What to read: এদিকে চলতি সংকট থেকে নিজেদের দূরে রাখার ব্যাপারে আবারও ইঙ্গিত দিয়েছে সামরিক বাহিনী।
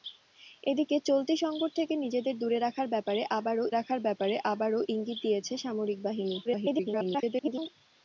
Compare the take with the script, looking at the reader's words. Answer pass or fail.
fail